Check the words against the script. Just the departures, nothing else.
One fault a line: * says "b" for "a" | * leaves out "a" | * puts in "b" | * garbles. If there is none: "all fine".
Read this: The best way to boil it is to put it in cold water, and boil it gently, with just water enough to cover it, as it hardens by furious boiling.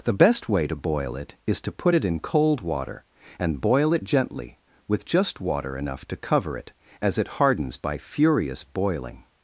all fine